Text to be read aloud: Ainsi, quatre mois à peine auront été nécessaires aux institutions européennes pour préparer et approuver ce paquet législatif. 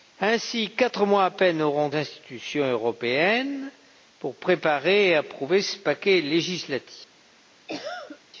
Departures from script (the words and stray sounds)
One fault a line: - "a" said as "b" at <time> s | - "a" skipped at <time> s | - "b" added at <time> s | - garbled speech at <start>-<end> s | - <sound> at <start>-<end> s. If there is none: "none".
- "été nécessaires aux" skipped at 1.9 s
- cough at 7.7-8.2 s